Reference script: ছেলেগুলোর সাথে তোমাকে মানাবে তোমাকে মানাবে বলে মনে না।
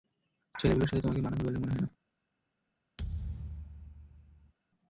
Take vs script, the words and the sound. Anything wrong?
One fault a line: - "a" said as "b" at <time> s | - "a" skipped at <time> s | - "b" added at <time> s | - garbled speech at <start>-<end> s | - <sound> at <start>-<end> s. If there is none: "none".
- "তোমাকে মানাবে" skipped at 1.4 s
- "হয়" added at 1.7 s
- thud at 3.0-4.5 s